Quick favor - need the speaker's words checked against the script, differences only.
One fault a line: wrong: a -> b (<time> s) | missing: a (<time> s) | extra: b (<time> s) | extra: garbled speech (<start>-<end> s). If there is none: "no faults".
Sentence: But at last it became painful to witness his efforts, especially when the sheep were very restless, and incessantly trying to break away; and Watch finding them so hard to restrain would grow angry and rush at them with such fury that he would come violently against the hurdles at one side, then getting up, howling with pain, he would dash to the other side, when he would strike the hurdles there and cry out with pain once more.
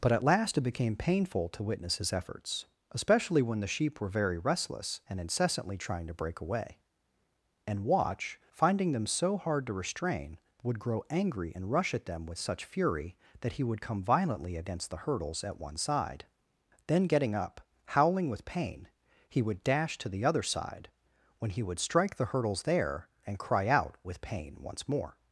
no faults